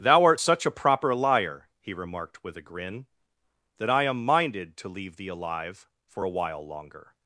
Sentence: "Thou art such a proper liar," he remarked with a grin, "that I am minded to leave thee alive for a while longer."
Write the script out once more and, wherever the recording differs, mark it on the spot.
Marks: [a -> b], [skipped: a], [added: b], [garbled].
"Thou art such a proper liar," he remarked with a grin, "that I am minded to leave thee alive for a while longer."